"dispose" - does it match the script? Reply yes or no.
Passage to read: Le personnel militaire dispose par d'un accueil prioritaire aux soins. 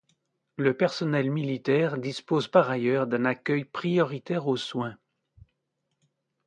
yes